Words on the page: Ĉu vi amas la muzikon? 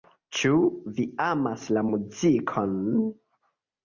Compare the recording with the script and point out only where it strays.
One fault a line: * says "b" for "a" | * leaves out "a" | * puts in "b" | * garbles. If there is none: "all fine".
all fine